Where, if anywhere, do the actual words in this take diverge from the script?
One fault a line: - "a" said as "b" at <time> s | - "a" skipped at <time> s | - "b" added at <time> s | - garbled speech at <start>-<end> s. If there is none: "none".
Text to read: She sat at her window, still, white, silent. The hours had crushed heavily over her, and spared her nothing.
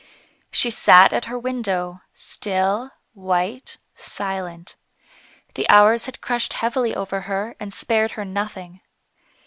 none